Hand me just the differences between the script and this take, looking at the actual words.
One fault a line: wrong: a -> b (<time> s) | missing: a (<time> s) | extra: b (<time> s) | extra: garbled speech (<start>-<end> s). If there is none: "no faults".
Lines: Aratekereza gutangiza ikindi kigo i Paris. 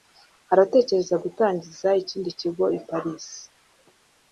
no faults